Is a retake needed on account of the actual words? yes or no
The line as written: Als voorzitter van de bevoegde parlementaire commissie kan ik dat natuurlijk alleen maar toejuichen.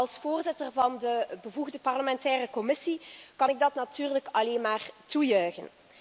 no